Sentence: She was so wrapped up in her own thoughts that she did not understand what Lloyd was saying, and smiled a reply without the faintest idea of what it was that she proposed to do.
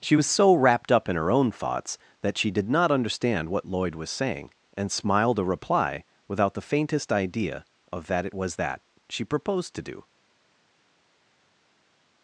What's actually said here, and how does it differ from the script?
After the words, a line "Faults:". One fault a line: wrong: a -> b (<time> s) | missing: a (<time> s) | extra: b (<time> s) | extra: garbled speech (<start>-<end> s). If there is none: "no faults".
She was so wrapped up in her own thoughts that she did not understand what Lloyd was saying, and smiled a reply without the faintest idea of that it was that she proposed to do.
Faults:
wrong: what -> that (8.1 s)